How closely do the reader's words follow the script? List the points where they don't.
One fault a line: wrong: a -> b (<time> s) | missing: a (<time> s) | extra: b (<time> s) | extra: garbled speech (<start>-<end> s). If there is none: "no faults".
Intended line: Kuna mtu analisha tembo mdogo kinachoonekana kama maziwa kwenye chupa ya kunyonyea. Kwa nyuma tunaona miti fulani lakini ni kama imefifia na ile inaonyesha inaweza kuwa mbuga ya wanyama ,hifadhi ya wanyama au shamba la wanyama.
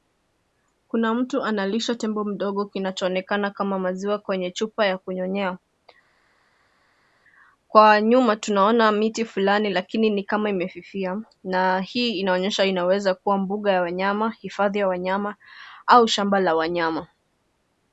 wrong: ile -> hii (11.8 s)